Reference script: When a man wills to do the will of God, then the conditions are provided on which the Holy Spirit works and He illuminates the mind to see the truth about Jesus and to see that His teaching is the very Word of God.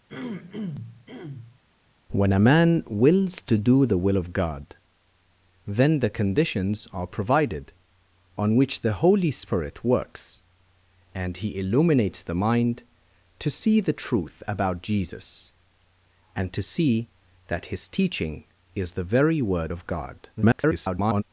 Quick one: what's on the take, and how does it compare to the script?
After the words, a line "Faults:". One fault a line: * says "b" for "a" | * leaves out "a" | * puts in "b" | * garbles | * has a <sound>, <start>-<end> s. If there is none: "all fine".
When a man wills to do the will of God, then the conditions are provided on which the Holy Spirit works and He illuminates the mind to see the truth about Jesus and to see that His teaching is the very Word of God. [garbled]
Faults:
* has a throat clearing, 0.1-1.6 s
* garbles